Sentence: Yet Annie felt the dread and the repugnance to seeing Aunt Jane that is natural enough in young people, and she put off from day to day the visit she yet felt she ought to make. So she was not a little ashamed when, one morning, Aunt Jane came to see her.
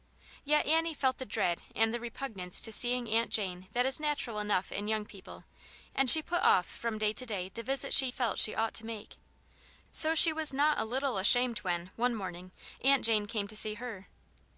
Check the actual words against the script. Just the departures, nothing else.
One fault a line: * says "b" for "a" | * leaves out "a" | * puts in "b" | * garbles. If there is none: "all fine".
* leaves out "yet"